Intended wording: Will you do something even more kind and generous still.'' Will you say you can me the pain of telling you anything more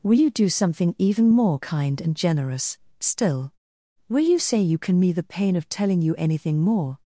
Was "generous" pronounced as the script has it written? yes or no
yes